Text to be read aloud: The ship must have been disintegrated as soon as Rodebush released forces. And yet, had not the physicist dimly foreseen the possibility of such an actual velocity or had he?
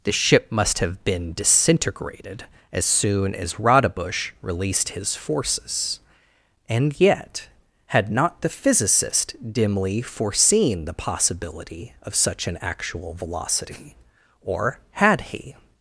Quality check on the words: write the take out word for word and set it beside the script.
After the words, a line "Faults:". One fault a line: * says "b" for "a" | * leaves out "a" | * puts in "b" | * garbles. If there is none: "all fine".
The ship must have been disintegrated as soon as Rodebush released his forces. And yet, had not the physicist dimly foreseen the possibility of such an actual velocity or had he?
Faults:
* puts in "his"